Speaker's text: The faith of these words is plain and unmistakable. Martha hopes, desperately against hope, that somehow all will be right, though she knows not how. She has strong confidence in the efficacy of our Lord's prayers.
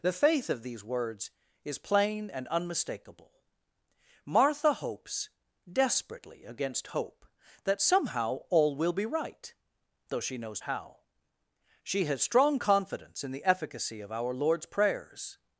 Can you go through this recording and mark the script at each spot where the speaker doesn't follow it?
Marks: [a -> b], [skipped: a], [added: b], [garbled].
The faith of these words is plain and unmistakable. Martha hopes, desperately against hope, that somehow all will be right, though she knows [skipped: not] how. She has strong confidence in the efficacy of our Lord's prayers.